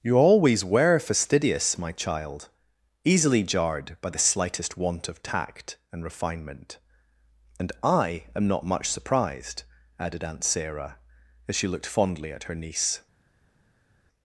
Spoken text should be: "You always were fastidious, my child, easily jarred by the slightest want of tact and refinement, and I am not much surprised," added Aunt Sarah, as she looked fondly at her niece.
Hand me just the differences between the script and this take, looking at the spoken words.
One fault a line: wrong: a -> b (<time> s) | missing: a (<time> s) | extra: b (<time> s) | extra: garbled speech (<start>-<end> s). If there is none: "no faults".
no faults